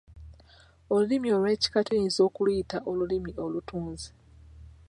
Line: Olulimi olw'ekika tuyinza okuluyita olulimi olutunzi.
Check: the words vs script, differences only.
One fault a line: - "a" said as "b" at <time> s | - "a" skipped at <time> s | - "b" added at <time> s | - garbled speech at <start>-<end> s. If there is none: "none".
none